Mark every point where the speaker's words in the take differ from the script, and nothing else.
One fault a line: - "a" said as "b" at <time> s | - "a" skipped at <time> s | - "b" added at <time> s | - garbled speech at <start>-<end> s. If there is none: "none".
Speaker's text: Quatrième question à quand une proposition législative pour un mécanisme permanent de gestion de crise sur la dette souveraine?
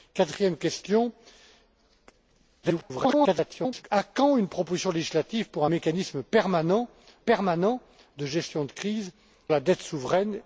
- garbled speech at 2.6-3.8 s
- "permanent" added at 7.2 s
- "sur" skipped at 9.1 s